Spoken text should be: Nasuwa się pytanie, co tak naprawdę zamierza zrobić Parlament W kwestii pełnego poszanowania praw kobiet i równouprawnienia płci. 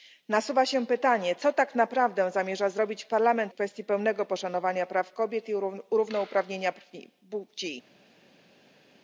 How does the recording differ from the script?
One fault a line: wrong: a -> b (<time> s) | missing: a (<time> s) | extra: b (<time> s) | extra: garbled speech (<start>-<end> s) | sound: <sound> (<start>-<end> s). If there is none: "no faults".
no faults